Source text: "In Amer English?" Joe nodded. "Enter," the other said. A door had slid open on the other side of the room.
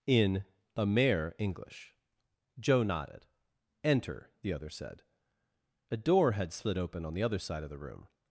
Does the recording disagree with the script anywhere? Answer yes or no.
no